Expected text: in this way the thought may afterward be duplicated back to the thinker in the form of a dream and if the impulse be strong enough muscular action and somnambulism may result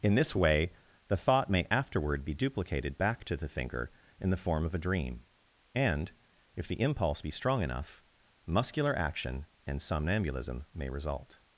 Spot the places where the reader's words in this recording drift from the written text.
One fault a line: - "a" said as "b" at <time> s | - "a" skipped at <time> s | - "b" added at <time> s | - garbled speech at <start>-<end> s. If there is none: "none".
none